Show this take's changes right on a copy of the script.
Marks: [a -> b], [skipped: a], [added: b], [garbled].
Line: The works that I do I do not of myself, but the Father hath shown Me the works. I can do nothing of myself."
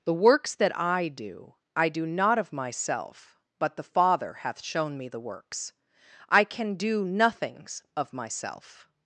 The works that I do I do not of myself, but the Father hath shown Me the works. I can do [nothing -> nothings] of myself."